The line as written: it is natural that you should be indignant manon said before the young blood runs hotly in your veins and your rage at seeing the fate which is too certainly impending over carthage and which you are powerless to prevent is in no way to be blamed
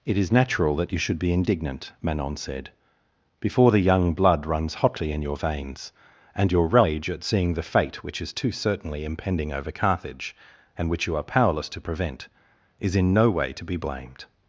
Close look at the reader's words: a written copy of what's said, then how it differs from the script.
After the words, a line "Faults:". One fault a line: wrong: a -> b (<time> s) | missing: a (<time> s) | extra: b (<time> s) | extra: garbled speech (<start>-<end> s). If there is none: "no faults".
it is natural that you should be indignant manon said before the young blood runs hotly in your veins and your rage at seeing the fate which is too certainly impending over carthage and which you are powerless to prevent is in no way to be blamed
Faults:
no faults